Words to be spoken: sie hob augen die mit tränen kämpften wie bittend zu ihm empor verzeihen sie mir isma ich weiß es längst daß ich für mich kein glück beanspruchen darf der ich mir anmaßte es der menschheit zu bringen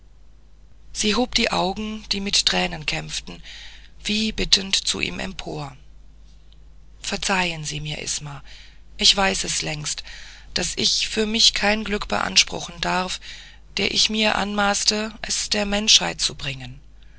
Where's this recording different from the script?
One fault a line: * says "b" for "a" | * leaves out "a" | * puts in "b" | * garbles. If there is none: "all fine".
* puts in "die"